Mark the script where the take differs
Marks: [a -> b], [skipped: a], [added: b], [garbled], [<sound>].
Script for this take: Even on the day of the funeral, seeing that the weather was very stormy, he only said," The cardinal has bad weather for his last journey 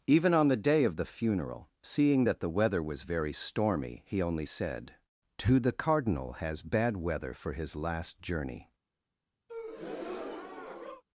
Even on the day of the funeral, seeing that the weather was very stormy, he only said," [added: to] The cardinal has bad weather for his last journey [breath]